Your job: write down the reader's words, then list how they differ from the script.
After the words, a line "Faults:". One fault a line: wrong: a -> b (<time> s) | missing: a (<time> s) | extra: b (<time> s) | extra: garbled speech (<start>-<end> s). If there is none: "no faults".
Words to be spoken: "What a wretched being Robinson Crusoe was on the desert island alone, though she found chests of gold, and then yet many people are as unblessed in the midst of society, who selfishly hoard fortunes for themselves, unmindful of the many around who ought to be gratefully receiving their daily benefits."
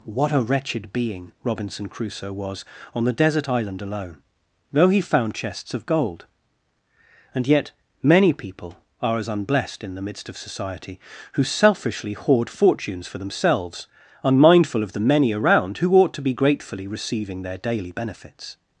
"What a wretched being Robinson Crusoe was on the desert island alone, though he found chests of gold, and yet many people are as unblessed in the midst of society, who selfishly hoard fortunes for themselves, unmindful of the many around who ought to be gratefully receiving their daily benefits."
Faults:
wrong: she -> he (4.9 s)
missing: then (7.5 s)